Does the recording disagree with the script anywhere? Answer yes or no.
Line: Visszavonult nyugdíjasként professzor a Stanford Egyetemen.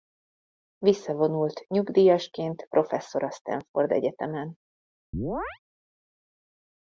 no